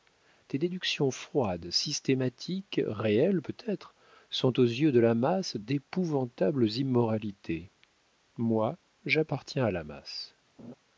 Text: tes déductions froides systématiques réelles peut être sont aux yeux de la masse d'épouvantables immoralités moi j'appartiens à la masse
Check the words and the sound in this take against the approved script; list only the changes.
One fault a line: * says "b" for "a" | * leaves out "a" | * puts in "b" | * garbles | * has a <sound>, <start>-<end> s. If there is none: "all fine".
* has a laugh, 10.6-10.7 s